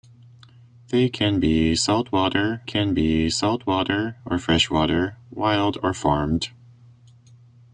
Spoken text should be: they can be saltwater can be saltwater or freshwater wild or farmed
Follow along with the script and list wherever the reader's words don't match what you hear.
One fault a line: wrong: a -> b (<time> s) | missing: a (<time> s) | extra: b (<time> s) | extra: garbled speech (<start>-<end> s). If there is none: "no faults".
no faults